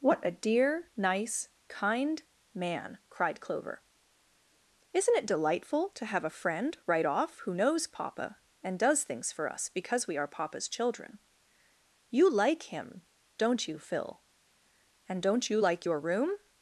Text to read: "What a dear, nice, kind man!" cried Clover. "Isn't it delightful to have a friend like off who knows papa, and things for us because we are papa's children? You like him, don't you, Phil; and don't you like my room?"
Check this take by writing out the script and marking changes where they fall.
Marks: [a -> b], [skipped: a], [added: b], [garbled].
"What a dear, nice, kind man!" cried Clover. "Isn't it delightful to have a friend [like -> right] off who knows papa, and [added: does] things for us because we are papa's children? You like him, don't you, Phil; and don't you like [my -> your] room?"